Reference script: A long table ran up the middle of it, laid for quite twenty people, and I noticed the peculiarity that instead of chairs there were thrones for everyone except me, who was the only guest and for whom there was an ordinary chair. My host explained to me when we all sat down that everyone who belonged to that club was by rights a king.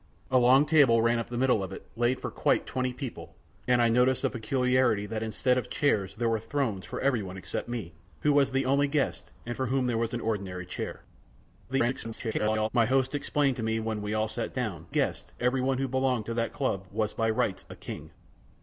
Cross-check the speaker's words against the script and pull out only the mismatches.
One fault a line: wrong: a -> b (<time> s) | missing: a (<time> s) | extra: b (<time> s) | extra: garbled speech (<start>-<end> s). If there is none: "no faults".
extra: garbled speech (11.7-12.7 s)
wrong: that -> guest (14.9 s)